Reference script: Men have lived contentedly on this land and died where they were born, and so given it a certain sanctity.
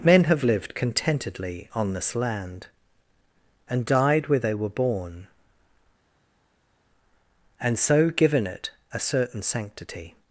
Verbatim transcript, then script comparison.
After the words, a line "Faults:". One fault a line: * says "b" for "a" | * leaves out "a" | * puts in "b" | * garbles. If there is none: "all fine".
Men have lived contentedly on this land and died where they were born, and so given it a certain sanctity.
Faults:
all fine